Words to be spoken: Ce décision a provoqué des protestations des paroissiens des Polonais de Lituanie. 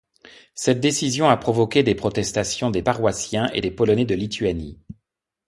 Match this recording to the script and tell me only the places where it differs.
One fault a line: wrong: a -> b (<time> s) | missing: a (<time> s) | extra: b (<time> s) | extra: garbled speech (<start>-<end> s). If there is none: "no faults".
wrong: Ce -> Cette (0.6 s)
extra: et (3.5 s)